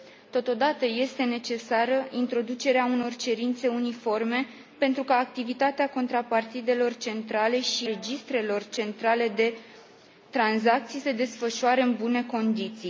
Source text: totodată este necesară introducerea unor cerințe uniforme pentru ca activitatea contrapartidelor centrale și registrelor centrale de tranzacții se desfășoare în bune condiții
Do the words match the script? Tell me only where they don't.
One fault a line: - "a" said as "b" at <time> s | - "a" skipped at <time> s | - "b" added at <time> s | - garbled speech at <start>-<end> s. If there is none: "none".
none